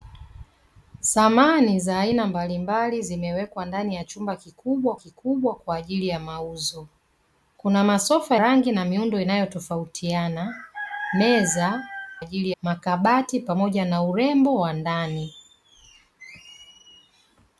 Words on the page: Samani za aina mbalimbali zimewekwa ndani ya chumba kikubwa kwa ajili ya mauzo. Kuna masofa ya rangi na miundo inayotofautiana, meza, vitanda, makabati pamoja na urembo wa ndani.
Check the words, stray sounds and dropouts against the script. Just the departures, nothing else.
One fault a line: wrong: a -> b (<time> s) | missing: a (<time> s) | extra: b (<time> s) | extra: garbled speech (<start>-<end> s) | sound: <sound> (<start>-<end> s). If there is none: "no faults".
extra: kikubwa (4.9 s)
missing: ya (8.4 s)
wrong: vitanda -> ajili (12.2 s)